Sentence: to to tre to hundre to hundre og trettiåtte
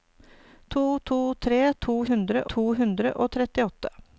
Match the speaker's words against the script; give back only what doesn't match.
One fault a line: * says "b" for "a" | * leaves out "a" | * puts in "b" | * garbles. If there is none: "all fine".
all fine